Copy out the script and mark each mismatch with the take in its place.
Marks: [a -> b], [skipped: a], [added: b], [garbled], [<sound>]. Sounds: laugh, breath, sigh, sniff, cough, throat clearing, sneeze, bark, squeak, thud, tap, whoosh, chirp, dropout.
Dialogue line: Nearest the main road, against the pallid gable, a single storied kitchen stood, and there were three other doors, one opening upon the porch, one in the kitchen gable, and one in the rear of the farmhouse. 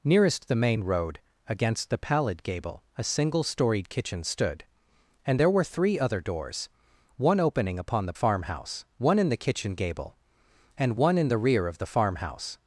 Nearest the main road, against the pallid gable, a single storied kitchen stood, and there were three other doors, one opening upon the [porch, -> farmhouse] one in the kitchen gable, and one in the rear of the farmhouse.